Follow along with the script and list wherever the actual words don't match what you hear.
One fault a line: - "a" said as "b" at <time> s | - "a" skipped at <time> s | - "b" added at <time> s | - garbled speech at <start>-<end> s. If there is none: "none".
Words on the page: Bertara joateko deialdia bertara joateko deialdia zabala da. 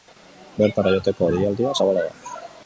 - "bertara joateko deialdia" skipped at 1.7 s